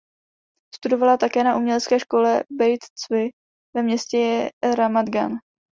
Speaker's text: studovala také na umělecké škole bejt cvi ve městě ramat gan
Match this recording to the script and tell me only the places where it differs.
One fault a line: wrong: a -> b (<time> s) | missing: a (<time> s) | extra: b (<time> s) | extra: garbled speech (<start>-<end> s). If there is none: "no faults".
no faults